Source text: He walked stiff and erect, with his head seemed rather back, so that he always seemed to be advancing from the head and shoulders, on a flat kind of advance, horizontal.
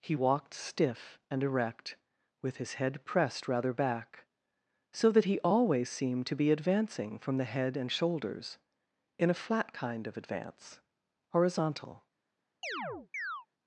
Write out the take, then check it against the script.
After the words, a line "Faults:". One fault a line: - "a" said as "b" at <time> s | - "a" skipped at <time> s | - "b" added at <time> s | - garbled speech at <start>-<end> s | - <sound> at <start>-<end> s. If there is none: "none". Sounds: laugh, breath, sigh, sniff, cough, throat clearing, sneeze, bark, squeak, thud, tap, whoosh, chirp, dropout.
He walked stiff and erect, with his head pressed rather back, so that he always seemed to be advancing from the head and shoulders, in a flat kind of advance, horizontal.
Faults:
- "seemed" said as "pressed" at 3.0 s
- "on" said as "in" at 9.2 s
- chirp at 12.6-13.5 s